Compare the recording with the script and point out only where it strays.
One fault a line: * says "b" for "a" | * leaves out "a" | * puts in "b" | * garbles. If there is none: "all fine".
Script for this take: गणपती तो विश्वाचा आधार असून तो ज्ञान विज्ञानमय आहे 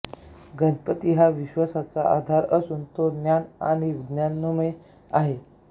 * says "हा" for "तो"
* puts in "आणि"